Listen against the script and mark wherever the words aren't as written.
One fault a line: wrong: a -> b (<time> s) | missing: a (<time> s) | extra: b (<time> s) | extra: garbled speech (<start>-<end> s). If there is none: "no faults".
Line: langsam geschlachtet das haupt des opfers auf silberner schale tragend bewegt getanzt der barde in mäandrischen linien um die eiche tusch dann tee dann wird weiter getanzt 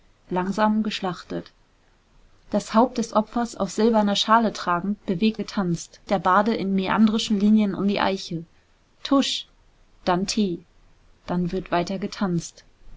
no faults